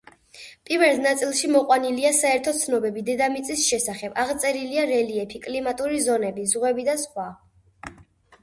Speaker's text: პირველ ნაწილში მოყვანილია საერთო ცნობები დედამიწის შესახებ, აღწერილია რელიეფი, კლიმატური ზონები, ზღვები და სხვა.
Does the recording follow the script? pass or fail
pass